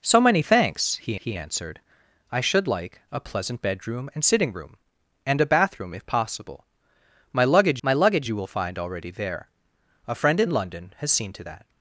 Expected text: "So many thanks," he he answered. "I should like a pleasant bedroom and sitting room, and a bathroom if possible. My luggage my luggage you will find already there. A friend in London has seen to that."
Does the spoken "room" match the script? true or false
true